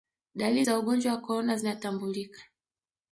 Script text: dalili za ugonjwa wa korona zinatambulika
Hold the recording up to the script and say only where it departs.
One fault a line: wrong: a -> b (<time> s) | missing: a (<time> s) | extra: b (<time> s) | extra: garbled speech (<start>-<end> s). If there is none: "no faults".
no faults